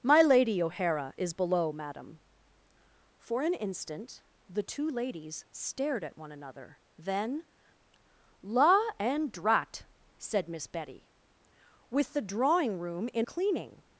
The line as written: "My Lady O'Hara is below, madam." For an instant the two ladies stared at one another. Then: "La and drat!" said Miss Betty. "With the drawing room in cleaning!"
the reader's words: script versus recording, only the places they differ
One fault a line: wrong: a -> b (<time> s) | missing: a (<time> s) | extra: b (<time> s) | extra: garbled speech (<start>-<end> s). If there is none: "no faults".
no faults